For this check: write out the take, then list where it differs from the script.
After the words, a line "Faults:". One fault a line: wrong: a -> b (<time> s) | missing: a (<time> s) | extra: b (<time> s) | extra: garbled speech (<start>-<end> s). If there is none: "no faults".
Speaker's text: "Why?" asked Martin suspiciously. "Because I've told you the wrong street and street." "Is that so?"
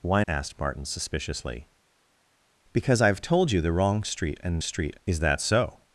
"Why?" asked Martin suspiciously. "Because I've told you the wrong street and street." "Is that so?"
Faults:
no faults